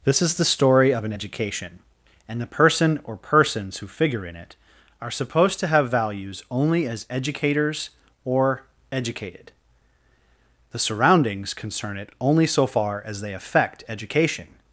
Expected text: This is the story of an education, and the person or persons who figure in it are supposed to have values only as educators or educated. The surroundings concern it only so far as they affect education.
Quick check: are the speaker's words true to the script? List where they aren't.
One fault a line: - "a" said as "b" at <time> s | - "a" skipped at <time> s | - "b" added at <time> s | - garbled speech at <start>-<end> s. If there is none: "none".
none